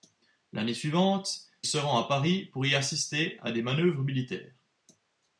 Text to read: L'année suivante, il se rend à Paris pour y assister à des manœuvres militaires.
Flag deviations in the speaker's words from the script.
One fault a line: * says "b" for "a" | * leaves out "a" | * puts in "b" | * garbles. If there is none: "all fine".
* leaves out "il"